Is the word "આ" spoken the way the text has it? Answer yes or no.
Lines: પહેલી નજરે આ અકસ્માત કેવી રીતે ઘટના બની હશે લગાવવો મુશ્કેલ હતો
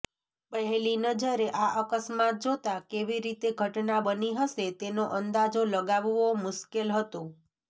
yes